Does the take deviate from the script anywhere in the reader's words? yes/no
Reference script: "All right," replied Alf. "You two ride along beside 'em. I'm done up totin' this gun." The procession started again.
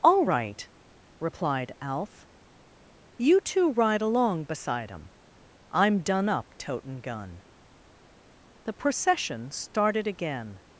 yes